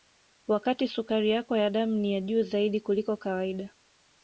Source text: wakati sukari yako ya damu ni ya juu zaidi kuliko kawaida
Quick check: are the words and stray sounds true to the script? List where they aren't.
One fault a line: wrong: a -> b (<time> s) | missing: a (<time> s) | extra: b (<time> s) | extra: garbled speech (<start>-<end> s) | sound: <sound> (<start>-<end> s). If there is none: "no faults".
no faults